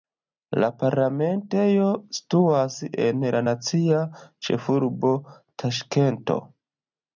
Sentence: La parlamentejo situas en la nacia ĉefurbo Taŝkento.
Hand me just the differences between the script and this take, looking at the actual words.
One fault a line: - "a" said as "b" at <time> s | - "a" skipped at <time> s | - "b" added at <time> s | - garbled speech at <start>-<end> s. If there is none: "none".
none